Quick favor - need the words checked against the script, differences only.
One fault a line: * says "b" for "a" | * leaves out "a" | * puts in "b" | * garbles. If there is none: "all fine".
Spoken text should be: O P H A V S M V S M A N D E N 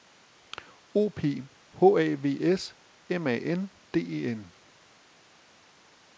* leaves out "V S M"